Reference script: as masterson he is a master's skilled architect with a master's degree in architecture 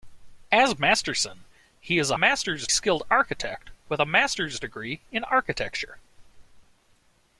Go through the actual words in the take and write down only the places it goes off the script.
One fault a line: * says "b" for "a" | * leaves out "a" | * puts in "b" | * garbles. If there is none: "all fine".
all fine